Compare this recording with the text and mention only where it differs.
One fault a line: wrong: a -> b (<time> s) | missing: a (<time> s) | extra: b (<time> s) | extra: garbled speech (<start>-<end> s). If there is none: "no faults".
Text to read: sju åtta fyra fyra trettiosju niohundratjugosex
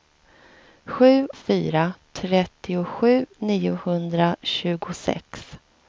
missing: åtta fyra (1.3 s)